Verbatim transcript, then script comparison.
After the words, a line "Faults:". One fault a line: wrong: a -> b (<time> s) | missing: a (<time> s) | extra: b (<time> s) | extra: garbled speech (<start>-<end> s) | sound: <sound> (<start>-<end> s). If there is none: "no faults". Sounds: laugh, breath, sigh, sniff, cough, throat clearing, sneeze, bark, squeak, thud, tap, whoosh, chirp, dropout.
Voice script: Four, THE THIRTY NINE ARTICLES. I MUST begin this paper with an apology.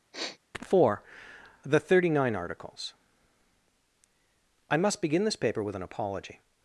Four, THE THIRTY NINE ARTICLES. I MUST begin this paper with an apology.
Faults:
sound: sniff (0.1-0.4 s)